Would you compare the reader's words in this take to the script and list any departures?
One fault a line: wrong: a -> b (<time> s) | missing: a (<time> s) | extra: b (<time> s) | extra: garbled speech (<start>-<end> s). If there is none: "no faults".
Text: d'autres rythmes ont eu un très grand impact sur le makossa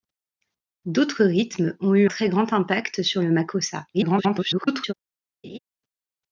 missing: un (2.1 s)
extra: garbled speech (3.9-4.9 s)